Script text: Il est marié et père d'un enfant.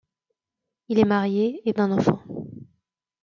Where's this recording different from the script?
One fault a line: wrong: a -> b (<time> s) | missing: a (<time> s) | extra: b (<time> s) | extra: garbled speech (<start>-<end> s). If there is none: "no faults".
missing: père (1.7 s)